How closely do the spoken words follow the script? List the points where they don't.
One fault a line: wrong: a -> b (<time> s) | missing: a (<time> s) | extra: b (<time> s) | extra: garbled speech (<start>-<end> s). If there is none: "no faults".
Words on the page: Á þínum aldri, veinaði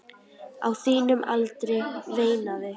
no faults